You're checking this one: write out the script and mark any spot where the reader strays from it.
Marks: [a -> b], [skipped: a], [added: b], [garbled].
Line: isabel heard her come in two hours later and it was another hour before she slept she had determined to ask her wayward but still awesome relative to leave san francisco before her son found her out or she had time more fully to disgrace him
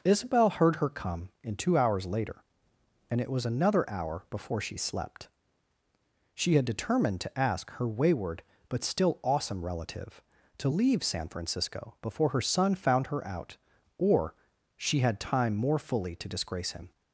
isabel heard her come in two hours later and it was another hour before she slept she had determined to ask her wayward but still awesome relative to leave san francisco before her son found her out or she had time more fully to disgrace him